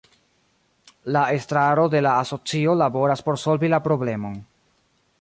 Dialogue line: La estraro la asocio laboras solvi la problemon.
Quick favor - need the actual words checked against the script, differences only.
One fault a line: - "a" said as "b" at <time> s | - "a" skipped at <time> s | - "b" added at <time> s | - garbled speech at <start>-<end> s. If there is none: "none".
- "de" added at 1.9 s
- "por" added at 3.2 s